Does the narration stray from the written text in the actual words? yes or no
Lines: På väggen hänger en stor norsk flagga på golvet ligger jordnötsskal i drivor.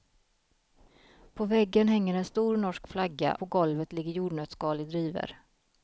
no